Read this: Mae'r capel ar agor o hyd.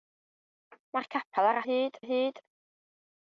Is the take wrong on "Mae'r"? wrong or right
right